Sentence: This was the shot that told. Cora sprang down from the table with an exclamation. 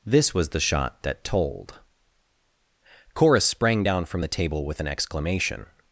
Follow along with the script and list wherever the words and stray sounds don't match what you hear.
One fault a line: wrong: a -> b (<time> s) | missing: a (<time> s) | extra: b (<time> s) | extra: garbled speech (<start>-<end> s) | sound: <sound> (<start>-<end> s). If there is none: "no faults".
no faults